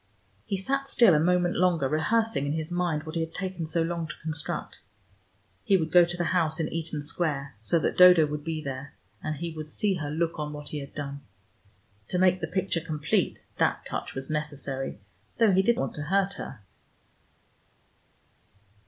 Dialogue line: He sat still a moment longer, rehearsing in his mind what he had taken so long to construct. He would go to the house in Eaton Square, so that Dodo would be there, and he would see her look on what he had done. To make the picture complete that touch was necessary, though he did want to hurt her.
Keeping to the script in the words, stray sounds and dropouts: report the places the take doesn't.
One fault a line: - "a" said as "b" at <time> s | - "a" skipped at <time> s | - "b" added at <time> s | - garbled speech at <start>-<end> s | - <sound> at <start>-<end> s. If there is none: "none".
none